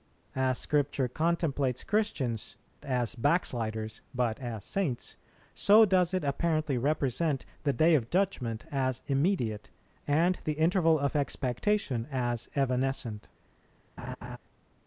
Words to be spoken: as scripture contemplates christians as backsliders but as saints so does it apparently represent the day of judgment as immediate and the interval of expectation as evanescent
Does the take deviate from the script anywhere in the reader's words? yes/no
no